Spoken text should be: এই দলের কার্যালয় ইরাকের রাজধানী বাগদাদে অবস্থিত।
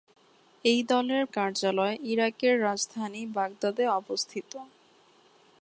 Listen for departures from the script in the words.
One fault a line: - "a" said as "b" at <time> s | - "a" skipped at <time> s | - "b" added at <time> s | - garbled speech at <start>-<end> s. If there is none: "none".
none